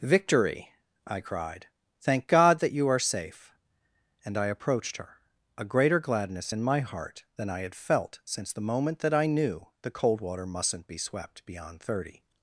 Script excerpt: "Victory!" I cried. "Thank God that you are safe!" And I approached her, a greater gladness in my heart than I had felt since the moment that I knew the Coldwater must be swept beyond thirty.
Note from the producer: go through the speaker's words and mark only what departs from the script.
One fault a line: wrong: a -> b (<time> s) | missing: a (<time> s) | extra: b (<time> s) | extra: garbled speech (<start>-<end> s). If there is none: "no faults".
wrong: must -> mustn't (10.5 s)